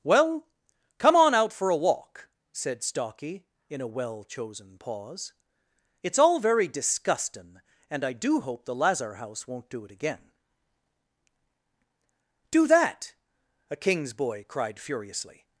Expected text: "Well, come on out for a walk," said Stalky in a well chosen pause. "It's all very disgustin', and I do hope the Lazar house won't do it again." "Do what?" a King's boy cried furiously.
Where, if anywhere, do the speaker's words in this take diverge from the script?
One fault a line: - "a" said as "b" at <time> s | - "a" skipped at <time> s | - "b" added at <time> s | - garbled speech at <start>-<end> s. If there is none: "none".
- "what" said as "that" at 12.7 s